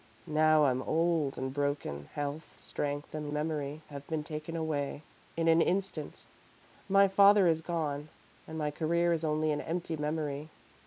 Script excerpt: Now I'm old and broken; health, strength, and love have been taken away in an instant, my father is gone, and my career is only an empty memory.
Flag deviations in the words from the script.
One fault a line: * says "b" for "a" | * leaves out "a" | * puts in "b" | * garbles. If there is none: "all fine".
* says "memory" for "love"